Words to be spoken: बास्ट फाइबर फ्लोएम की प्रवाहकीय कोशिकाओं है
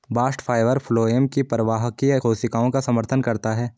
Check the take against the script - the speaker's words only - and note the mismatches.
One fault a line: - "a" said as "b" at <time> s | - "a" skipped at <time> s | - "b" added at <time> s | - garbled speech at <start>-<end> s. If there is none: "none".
- "का समर्थन करता" added at 2.7 s